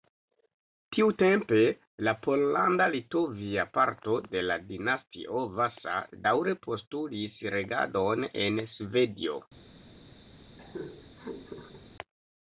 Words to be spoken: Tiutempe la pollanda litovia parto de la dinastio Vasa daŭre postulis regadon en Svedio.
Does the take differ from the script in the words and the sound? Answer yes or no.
yes